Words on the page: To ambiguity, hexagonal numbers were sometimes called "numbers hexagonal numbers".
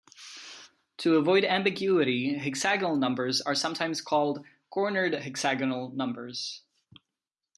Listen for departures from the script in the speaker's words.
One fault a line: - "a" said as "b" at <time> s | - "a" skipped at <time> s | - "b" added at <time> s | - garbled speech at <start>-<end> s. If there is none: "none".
- "avoid" added at 1.2 s
- "were" said as "are" at 3.4 s
- "numbers" said as "cornered" at 4.7 s